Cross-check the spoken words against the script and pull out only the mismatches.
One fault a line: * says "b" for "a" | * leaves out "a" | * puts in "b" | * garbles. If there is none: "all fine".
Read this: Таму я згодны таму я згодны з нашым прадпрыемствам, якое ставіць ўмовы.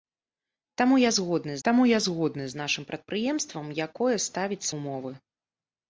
all fine